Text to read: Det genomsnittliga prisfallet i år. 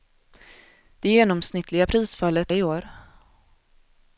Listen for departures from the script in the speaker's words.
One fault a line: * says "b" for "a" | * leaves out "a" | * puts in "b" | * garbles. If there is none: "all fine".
all fine